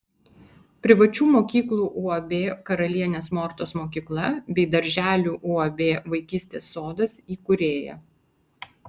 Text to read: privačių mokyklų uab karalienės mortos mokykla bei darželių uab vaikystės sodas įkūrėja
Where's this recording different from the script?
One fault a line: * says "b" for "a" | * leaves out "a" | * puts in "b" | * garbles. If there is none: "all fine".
all fine